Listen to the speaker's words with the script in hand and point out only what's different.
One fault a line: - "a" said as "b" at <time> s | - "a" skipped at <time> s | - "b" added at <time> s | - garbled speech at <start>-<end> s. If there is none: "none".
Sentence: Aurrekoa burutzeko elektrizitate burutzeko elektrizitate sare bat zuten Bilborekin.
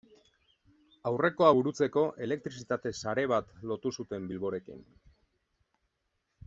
- "burutzeko elektrizitate" skipped at 2.9 s
- "lotu" added at 3.7 s